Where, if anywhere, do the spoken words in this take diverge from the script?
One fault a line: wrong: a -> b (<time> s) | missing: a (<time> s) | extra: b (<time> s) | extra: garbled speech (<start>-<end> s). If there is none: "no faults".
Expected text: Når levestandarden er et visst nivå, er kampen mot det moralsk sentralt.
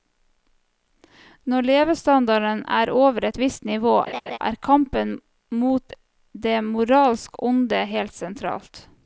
extra: over (2.9 s)
extra: onde helt (7.5 s)